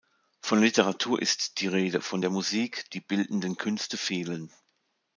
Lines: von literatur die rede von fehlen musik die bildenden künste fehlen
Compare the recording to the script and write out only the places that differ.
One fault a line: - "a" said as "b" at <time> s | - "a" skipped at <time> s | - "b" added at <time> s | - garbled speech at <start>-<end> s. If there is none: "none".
- "ist" added at 1.2 s
- "fehlen" said as "der" at 2.2 s